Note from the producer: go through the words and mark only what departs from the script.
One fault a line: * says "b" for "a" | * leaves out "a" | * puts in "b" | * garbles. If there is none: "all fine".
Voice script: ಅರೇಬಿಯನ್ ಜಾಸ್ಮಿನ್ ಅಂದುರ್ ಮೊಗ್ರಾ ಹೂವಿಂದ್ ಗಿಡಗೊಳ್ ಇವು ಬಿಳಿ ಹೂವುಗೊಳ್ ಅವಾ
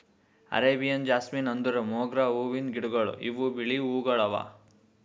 all fine